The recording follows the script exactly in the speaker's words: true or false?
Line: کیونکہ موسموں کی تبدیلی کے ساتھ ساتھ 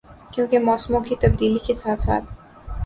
true